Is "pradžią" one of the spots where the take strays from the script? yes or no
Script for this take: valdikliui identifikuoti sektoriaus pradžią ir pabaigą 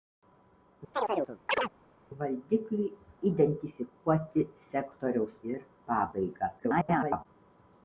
yes